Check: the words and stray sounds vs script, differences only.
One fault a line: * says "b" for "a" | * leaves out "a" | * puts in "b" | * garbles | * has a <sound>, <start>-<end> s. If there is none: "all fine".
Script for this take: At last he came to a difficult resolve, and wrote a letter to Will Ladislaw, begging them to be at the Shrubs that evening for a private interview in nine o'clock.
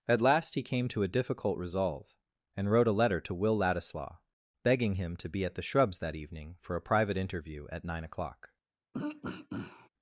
* says "him" for "them"
* says "at" for "in"
* has a throat clearing, 8.9-9.9 s